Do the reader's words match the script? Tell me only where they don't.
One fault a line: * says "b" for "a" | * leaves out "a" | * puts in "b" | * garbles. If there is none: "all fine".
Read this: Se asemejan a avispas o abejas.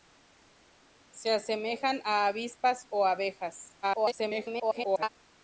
* garbles